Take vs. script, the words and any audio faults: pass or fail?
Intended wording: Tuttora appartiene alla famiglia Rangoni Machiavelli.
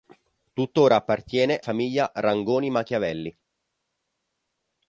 fail